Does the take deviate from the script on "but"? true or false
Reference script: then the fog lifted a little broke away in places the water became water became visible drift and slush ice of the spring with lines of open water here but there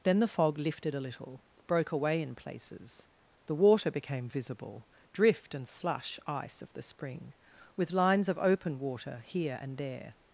true